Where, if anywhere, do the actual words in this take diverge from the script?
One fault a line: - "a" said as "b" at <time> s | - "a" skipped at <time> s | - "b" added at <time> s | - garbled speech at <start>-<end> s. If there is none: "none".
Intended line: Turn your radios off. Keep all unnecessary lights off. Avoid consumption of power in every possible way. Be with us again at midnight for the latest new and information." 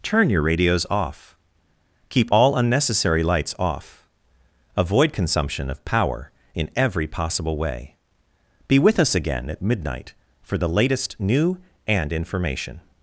none